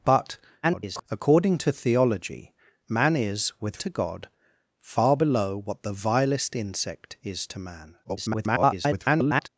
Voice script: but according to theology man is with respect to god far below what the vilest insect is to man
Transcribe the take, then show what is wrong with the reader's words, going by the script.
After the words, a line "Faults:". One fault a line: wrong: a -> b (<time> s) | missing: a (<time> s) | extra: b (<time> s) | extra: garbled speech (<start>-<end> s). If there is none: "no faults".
but [garbled] according to theology man is with to god far below what the vilest insect is to man [garbled]
Faults:
extra: garbled speech (0.6-1.0 s)
missing: respect (3.8 s)
extra: garbled speech (8.0-9.5 s)